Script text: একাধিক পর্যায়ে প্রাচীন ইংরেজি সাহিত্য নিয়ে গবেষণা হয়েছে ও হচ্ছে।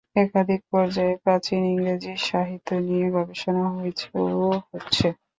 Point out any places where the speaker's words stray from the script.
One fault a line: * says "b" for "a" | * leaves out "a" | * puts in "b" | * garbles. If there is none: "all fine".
all fine